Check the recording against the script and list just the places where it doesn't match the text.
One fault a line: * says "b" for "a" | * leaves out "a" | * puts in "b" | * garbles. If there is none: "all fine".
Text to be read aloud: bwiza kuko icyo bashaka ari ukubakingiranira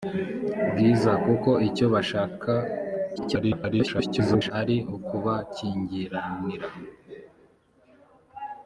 * garbles